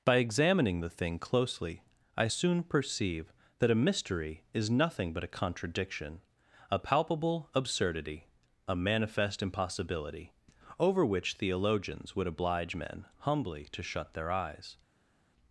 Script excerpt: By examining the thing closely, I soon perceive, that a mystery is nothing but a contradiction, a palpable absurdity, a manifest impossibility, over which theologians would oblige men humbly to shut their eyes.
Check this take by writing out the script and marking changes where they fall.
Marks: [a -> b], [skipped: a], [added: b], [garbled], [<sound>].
By examining the thing closely, I soon perceive, that a mystery is nothing but a contradiction, a palpable absurdity, a manifest impossibility, over which theologians would oblige men humbly to shut their eyes.